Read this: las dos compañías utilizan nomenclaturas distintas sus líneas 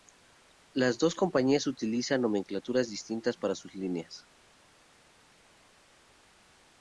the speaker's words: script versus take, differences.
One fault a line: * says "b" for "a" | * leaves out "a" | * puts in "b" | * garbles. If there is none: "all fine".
* puts in "para"